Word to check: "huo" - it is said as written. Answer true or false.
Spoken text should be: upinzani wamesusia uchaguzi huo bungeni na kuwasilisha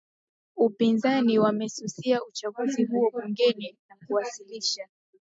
true